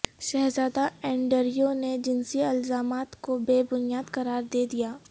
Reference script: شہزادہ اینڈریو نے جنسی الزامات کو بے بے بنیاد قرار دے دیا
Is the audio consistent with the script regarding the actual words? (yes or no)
no